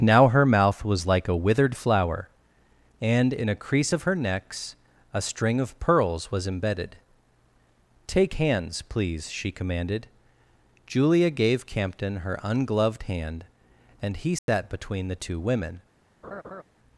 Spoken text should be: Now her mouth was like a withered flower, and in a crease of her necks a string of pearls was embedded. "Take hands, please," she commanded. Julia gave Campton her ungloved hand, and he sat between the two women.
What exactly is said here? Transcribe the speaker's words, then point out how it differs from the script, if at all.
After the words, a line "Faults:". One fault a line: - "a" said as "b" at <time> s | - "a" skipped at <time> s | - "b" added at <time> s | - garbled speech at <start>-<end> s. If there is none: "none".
Now her mouth was like a withered flower, and in a crease of her necks a string of pearls was embedded. "Take hands, please," she commanded. Julia gave Campton her ungloved hand, and he sat between the two women.
Faults:
none